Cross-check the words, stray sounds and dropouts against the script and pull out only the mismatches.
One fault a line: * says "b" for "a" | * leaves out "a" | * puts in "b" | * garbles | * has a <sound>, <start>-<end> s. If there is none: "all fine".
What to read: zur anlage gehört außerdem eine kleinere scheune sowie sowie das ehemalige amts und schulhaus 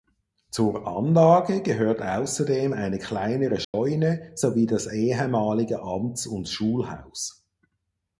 * has a dropout, 3.6-3.7 s
* leaves out "sowie"